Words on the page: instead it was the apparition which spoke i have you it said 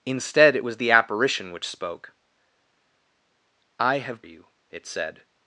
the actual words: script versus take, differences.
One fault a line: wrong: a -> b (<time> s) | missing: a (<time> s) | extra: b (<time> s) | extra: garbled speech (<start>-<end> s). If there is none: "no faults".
no faults